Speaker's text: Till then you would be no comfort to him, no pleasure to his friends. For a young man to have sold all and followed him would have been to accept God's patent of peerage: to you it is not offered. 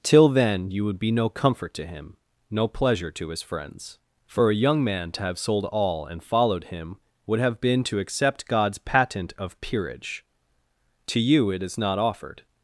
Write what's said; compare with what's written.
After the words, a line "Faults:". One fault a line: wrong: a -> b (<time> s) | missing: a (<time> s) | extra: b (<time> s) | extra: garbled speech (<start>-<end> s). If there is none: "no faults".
Till then you would be no comfort to him, no pleasure to his friends. For a young man to have sold all and followed him would have been to accept God's patent of peerage: to you it is not offered.
Faults:
no faults